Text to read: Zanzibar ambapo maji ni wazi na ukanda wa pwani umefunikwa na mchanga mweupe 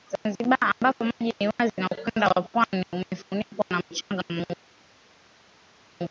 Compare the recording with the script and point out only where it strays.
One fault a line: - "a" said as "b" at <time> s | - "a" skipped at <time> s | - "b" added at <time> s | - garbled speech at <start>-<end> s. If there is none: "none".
none